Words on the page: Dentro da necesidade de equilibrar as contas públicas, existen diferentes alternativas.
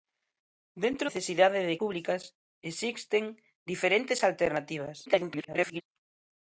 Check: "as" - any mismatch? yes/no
yes